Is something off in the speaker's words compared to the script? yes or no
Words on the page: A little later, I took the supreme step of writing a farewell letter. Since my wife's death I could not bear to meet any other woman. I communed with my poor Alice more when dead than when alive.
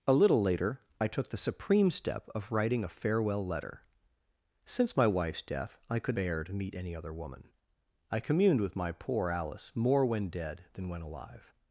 yes